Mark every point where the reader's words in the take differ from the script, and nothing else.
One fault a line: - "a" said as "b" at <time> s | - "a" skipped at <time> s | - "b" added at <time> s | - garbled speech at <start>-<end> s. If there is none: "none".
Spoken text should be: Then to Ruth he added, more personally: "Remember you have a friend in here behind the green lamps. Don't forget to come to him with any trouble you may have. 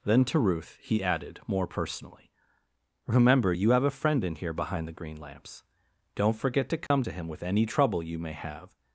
none